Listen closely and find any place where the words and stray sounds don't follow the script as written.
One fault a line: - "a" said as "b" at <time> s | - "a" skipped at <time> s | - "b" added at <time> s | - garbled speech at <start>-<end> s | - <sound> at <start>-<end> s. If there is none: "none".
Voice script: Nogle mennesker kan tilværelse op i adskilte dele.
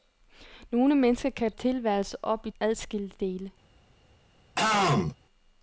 - throat clearing at 4.6-5.2 s